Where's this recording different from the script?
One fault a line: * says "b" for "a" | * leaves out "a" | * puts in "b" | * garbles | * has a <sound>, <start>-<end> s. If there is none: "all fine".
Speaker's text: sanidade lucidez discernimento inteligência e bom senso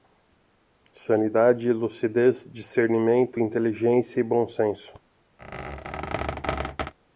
* has a squeak, 5.4-6.9 s